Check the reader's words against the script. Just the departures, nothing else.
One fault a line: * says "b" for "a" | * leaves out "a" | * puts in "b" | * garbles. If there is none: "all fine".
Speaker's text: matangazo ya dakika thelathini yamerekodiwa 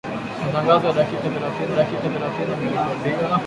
* puts in "dakika thelathini"